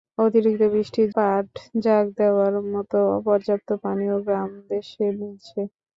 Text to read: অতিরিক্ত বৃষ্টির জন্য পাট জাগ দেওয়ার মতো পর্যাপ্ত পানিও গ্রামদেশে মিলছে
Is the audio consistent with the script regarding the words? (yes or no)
no